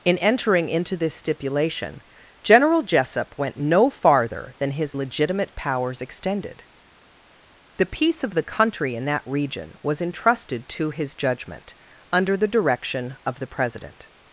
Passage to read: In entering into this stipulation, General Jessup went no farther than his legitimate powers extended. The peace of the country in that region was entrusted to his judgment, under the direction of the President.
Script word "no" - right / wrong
right